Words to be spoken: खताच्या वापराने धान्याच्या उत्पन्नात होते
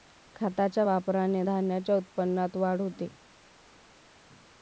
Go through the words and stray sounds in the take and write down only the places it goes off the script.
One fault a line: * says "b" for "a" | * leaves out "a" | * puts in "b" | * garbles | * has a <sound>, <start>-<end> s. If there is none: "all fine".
* puts in "वाढ"